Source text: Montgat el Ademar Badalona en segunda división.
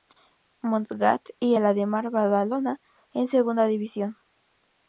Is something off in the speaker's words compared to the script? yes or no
yes